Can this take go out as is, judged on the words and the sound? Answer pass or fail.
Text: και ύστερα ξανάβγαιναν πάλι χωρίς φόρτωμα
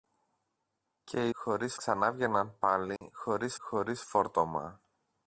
fail